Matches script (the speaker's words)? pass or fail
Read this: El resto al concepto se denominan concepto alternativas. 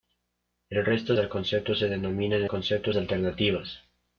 pass